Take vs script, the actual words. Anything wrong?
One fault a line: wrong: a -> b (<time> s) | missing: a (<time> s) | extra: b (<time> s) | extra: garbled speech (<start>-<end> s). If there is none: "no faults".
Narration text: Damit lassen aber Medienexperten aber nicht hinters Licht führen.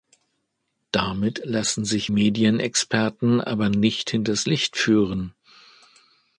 wrong: aber -> sich (1.8 s)